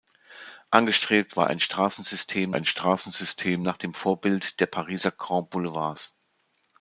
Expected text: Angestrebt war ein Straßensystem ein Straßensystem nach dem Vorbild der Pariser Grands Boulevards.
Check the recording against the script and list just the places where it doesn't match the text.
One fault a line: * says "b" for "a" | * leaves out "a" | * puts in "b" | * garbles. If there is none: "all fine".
all fine